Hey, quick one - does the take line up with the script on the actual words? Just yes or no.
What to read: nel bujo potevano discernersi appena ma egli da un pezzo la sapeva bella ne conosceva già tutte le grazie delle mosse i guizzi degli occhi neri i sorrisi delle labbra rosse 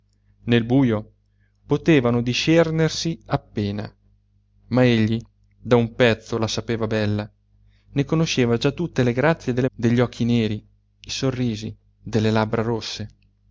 no